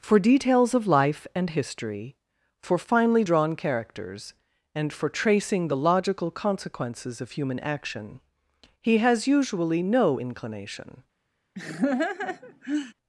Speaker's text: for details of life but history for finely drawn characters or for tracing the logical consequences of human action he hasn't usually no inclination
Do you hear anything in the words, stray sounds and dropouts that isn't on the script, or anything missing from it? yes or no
yes